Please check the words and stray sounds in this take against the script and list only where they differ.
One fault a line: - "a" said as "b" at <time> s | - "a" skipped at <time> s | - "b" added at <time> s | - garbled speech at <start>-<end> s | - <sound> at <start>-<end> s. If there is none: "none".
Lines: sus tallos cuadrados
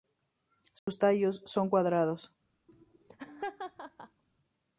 - dropout at 0.8-0.9 s
- "son" added at 1.4 s
- laugh at 2.7-4.2 s